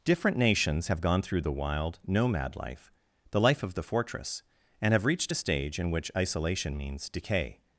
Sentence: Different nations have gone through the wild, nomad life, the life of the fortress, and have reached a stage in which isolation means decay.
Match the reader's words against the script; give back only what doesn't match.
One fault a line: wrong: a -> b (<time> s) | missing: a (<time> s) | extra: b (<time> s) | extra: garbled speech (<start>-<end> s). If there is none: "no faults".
no faults